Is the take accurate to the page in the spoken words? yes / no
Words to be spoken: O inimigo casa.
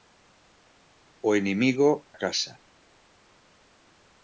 yes